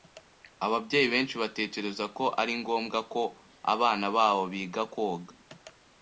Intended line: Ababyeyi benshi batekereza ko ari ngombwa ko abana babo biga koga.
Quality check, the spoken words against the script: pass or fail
pass